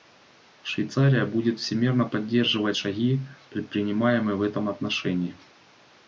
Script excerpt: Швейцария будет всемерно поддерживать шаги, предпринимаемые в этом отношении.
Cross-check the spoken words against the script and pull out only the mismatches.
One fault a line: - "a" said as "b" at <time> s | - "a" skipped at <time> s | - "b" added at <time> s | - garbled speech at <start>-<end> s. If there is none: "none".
none